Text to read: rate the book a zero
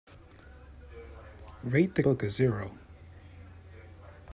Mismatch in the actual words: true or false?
false